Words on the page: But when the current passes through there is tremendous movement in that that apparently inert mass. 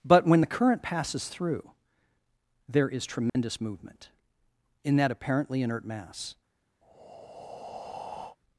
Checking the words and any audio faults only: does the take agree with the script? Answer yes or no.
no